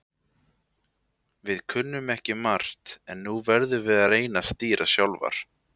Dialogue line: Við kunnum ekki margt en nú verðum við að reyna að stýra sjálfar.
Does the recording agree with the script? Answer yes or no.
yes